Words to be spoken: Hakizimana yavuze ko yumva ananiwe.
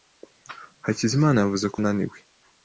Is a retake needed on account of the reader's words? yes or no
yes